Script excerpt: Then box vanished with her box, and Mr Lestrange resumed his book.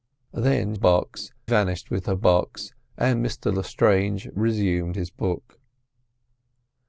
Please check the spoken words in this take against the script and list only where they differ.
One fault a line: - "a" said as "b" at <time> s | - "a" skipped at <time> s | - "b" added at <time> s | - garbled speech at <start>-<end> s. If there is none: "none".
none